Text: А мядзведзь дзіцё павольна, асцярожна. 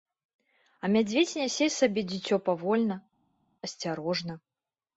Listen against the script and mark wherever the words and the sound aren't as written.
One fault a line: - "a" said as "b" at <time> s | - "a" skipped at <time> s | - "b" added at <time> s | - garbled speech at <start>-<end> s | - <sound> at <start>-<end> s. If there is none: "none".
- "нясе сабе" added at 1.4 s